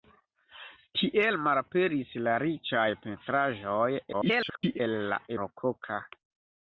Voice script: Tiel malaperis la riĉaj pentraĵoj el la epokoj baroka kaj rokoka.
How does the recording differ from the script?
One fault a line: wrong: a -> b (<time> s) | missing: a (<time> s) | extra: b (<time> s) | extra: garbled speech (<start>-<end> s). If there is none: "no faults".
extra: garbled speech (4.1-4.8 s)
missing: epokoj baroka kaj (5.2 s)